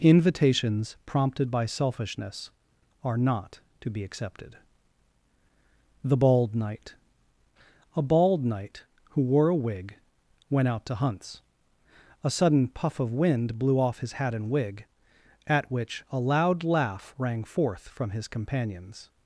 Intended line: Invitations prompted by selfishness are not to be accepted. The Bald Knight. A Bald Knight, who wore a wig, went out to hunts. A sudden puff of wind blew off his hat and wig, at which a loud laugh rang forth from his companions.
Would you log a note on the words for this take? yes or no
no